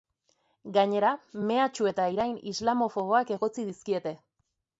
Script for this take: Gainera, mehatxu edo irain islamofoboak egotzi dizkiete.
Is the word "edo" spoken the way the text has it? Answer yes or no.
no